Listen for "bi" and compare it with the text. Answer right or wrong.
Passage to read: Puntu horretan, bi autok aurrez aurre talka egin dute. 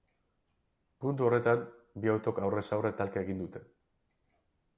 right